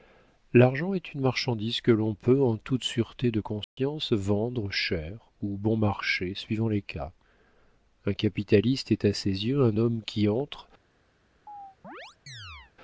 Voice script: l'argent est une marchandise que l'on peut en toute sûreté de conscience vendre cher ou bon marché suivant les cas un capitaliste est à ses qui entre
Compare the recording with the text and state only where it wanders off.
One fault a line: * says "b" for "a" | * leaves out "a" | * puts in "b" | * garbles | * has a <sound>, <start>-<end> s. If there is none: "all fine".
* has a dropout, 3.6-3.8 s
* puts in "yeux un homme"
* has a chirp, 11.5-12.7 s